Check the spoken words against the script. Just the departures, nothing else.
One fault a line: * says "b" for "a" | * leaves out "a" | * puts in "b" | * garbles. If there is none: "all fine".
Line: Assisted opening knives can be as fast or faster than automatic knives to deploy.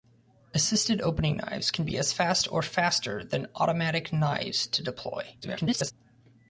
* garbles